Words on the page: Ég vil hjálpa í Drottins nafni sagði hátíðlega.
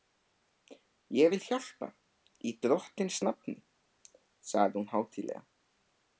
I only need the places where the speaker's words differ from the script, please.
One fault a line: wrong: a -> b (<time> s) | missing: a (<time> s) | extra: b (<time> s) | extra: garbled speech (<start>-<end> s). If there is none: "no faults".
extra: hún (4.8 s)